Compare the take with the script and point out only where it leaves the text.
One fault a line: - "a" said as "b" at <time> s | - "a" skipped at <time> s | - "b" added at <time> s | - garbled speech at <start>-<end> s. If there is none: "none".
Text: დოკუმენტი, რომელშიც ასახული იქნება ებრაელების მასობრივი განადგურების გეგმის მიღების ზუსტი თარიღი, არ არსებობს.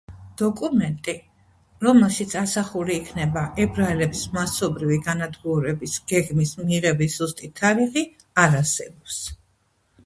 none